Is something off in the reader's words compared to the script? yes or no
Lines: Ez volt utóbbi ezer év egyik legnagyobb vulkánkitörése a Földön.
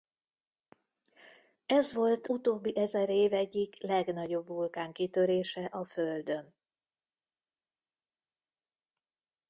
no